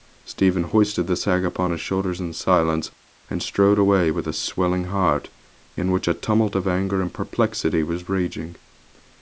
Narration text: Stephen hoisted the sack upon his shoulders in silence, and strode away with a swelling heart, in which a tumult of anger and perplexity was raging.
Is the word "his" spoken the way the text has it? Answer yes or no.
yes